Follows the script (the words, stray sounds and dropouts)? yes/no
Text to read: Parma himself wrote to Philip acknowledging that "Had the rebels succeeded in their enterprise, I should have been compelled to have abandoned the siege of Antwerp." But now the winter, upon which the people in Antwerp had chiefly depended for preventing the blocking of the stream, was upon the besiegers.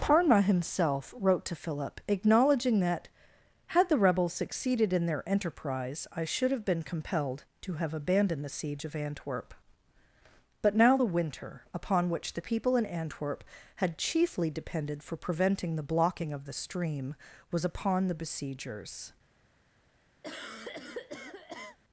no